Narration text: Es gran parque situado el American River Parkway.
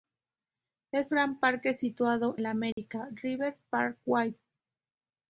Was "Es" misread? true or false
false